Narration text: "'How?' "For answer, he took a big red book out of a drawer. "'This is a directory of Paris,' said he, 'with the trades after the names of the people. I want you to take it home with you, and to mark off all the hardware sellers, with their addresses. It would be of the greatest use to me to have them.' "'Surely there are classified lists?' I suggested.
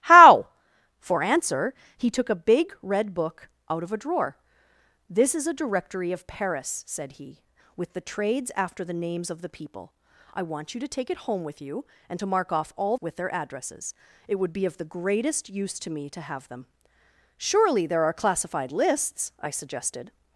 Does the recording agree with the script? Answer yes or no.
no